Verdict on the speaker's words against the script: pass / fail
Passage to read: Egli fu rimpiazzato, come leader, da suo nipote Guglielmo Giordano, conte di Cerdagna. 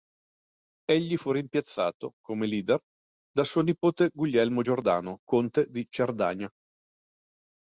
pass